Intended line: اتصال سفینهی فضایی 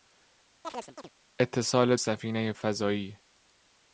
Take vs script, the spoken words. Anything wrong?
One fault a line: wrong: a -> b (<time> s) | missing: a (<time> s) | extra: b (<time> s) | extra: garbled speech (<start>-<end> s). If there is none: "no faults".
no faults